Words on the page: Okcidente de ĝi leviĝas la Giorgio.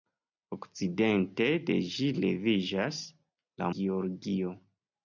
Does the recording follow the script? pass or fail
pass